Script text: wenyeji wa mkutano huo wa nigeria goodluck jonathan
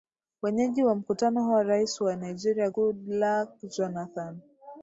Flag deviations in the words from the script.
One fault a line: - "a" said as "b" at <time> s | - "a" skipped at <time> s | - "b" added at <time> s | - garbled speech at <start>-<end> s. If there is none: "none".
- "rais" added at 1.6 s